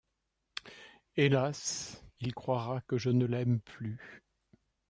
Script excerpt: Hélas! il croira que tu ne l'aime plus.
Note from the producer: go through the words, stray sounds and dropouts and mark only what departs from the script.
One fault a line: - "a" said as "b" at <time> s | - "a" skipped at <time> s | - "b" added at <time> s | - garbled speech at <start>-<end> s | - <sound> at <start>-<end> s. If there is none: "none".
- "tu" said as "je" at 3.0 s